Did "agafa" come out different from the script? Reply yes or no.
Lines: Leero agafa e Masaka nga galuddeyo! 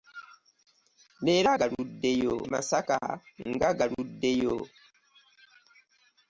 yes